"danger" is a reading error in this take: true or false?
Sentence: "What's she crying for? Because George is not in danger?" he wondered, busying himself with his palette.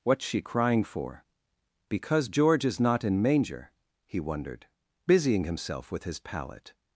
true